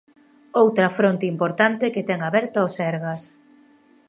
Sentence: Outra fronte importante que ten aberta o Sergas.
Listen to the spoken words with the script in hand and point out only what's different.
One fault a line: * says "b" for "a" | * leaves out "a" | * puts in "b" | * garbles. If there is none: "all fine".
all fine